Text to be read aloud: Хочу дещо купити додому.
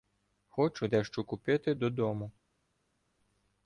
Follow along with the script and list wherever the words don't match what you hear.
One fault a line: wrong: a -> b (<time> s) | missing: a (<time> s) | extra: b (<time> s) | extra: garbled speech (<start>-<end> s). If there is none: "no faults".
no faults